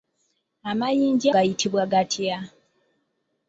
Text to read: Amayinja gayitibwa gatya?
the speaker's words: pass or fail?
pass